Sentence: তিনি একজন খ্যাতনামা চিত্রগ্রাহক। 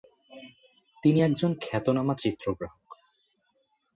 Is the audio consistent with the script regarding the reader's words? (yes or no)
yes